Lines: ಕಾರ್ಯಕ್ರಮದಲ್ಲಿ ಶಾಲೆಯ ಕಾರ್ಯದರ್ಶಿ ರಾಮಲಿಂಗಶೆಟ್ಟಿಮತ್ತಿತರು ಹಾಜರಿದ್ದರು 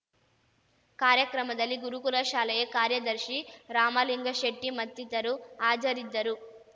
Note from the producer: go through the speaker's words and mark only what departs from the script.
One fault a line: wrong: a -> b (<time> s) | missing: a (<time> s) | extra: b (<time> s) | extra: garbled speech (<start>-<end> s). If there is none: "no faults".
extra: ಗುರುಕುಲ (1.8 s)